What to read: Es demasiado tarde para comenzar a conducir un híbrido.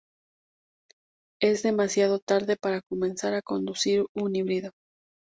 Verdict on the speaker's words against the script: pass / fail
pass